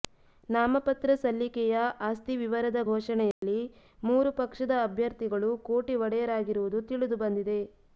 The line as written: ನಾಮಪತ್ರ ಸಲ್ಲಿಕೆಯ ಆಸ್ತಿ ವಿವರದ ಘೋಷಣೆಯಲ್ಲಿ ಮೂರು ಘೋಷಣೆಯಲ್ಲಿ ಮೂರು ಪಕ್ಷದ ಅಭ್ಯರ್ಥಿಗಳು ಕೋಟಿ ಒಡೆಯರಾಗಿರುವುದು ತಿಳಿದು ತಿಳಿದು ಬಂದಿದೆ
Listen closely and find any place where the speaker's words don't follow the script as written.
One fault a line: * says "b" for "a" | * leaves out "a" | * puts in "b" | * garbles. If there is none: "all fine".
* leaves out "ಘೋಷಣೆಯಲ್ಲಿ ಮೂರು"
* leaves out "ತಿಳಿದು"